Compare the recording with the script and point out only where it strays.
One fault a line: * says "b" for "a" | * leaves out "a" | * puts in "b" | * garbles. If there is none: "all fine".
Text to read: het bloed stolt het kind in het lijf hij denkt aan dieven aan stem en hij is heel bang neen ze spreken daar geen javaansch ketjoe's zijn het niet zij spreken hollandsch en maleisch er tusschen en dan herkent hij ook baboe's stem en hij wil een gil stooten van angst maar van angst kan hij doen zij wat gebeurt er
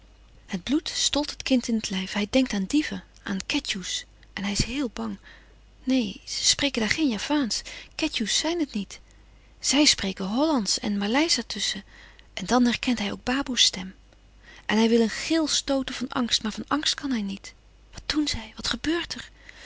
* says "ketjoe's" for "stem"
* puts in "niet wat"